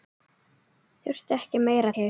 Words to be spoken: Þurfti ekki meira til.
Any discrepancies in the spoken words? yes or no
no